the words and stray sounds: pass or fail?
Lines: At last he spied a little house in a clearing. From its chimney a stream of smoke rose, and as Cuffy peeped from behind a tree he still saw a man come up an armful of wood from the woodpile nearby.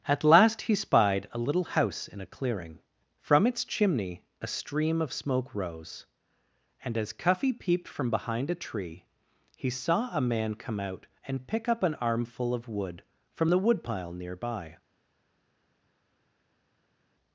fail